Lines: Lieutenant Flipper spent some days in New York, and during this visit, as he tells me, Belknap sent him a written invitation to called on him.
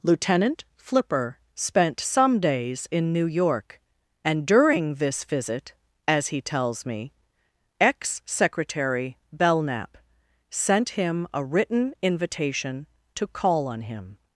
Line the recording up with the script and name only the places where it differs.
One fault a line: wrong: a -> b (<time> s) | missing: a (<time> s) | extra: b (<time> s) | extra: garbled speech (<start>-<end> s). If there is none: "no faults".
extra: ex Secretary (7.8 s)
wrong: called -> call (13.3 s)